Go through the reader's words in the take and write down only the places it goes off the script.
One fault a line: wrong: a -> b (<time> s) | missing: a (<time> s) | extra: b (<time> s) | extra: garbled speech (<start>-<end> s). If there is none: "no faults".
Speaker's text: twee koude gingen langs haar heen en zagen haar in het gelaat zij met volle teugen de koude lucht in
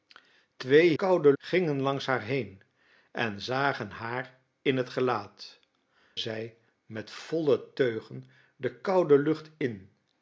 no faults